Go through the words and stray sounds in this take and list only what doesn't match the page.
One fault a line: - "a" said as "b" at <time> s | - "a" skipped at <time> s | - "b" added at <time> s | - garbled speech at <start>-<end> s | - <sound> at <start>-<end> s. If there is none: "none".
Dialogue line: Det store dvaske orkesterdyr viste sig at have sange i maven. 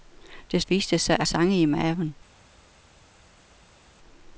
- "store dvaske orkesterdyr" skipped at 0.6 s
- "have" skipped at 1.3 s